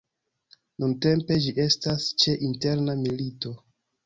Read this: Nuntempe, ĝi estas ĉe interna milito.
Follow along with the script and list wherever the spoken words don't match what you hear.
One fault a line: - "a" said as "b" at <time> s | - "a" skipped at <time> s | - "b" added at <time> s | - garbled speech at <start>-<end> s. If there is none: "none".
none